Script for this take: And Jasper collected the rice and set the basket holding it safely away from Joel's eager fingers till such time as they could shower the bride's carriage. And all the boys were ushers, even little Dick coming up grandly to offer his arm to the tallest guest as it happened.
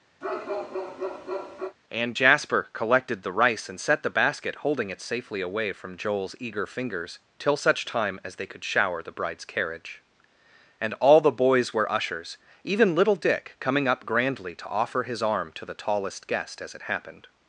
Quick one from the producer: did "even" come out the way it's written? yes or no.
yes